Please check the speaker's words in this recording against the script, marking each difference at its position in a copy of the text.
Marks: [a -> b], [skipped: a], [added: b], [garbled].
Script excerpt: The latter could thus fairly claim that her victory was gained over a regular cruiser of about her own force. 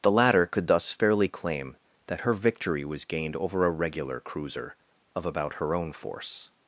The latter could thus fairly claim that her victory was gained over a regular cruiser of about her own force.